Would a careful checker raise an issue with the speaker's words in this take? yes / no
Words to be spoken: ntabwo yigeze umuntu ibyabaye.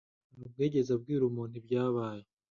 yes